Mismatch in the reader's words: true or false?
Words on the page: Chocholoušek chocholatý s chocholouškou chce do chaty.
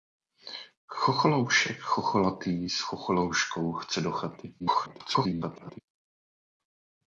true